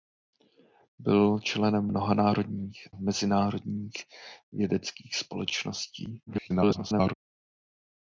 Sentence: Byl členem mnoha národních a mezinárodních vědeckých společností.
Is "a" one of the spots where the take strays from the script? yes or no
yes